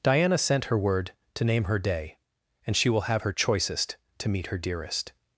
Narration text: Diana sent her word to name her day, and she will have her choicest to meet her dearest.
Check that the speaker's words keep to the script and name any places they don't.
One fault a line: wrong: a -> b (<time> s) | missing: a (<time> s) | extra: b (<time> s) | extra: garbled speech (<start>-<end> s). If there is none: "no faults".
no faults